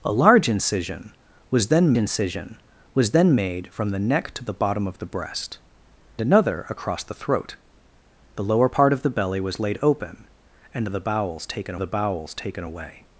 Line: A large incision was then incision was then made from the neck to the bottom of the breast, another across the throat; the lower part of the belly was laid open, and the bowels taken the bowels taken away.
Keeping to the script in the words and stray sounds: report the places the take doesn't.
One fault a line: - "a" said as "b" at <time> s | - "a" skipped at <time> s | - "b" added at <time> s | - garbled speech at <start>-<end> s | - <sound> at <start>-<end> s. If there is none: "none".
none